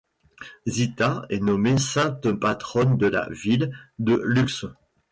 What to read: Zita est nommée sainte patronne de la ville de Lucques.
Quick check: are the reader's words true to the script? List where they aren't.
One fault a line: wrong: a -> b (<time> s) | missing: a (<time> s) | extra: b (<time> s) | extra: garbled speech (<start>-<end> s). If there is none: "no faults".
no faults